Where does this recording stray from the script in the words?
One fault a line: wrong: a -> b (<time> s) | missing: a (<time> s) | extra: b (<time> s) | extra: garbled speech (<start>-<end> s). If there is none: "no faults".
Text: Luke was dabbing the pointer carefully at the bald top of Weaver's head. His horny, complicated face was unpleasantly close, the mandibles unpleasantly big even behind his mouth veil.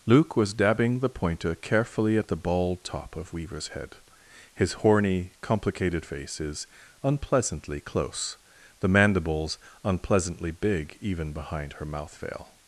wrong: was -> is (6.4 s)
wrong: his -> her (11.7 s)